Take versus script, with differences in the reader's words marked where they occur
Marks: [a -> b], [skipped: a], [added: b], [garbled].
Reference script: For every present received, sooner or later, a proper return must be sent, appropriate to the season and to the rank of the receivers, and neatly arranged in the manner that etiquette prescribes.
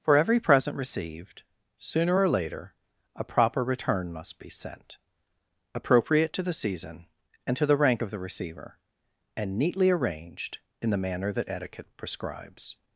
For every present received, sooner or later, a proper return must be sent, appropriate to the season and to the rank of the [receivers, -> receiver] and neatly arranged in the manner that etiquette prescribes.